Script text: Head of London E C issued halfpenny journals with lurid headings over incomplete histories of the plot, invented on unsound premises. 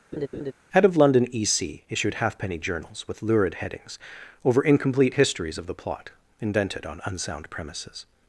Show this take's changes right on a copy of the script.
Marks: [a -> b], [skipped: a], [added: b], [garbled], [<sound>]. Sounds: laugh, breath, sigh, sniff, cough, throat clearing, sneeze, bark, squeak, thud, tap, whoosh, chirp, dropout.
[laugh] Head of London E C issued halfpenny journals with lurid headings over incomplete histories of the plot, invented on unsound premises.